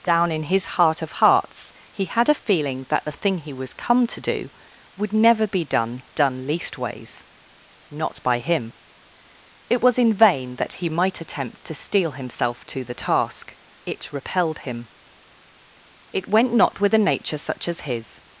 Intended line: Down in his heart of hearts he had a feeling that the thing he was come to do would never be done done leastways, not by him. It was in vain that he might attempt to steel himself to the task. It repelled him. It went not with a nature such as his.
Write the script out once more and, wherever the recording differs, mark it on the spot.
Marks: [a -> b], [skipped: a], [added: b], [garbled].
Down in his heart of hearts he had a feeling that the thing he was come to do would never be done done leastways, not by him. It was in vain that he might attempt to steel himself to the task. It repelled him. It went not with a nature such as his.